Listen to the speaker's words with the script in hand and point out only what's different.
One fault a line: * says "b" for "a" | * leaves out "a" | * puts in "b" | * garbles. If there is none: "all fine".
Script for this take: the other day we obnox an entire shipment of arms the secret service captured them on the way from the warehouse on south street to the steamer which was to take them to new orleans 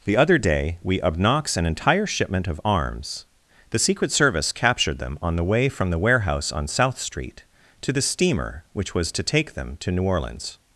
all fine